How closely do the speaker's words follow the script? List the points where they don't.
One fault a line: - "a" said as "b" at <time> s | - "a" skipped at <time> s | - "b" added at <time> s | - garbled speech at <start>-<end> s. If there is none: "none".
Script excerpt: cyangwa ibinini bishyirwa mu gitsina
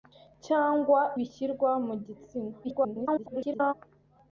- "ibinini" skipped at 1.0 s
- garbled speech at 2.6-3.7 s